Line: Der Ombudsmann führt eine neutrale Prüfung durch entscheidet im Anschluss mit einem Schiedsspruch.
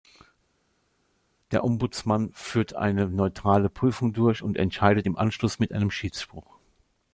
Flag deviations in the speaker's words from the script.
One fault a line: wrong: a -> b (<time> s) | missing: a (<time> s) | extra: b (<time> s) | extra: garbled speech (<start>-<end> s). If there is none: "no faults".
extra: und (4.4 s)